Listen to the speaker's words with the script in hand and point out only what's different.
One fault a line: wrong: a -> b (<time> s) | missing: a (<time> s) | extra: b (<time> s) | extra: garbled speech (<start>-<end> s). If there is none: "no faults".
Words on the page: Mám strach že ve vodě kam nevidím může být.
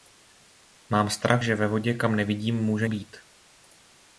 no faults